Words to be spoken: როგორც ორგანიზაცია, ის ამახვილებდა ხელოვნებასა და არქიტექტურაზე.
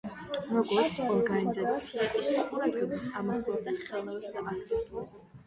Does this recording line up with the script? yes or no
no